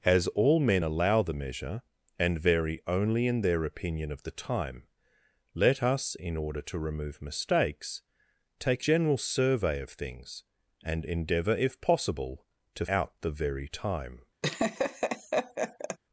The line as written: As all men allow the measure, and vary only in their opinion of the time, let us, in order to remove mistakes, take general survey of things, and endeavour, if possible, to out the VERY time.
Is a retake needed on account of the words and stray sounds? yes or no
yes